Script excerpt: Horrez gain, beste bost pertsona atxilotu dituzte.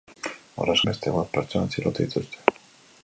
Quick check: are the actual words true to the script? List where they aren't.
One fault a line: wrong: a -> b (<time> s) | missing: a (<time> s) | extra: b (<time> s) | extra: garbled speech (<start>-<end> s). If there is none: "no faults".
missing: gain (0.8 s)